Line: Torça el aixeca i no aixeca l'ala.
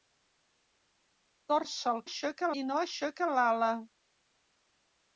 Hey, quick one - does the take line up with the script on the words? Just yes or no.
yes